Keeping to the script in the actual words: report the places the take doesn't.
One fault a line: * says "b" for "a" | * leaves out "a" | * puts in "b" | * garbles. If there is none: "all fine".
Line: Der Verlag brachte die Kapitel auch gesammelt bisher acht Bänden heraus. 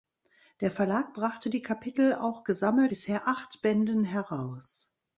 all fine